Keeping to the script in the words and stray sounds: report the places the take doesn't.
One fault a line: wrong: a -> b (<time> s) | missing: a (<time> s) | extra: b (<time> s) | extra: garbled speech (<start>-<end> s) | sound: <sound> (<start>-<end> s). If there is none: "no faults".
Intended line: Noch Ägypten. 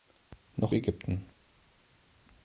no faults